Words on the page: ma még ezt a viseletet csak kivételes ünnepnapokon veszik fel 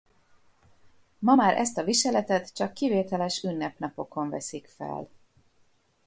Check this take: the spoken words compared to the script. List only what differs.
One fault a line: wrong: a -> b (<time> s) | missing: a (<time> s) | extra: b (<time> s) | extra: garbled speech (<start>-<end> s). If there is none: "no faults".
wrong: még -> már (1.3 s)